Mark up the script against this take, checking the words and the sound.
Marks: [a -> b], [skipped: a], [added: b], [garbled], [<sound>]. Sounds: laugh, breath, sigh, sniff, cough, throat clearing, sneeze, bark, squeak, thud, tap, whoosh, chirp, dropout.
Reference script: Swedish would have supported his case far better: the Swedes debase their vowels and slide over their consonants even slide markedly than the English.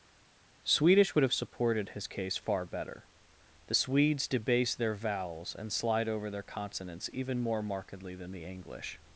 Swedish would have supported his case far better: the Swedes debase their vowels and slide over their consonants even [slide -> more] markedly than the English.